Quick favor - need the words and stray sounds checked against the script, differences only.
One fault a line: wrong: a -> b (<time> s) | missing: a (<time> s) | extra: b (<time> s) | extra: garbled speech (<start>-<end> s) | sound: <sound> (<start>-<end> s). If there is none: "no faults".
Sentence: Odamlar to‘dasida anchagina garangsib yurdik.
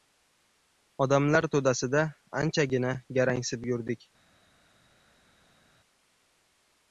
no faults